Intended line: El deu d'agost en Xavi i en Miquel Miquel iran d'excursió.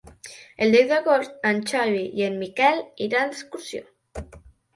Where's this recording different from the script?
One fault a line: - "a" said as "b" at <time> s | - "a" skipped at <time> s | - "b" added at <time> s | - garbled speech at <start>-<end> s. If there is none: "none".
- "Miquel" skipped at 2.8 s